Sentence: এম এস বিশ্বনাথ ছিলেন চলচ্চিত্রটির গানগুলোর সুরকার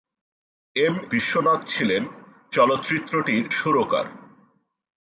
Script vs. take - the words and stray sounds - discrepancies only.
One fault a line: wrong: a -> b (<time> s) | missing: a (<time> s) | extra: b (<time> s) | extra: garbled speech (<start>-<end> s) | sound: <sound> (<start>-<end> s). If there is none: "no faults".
missing: এস (0.9 s)
missing: গানগুলোর (3.4 s)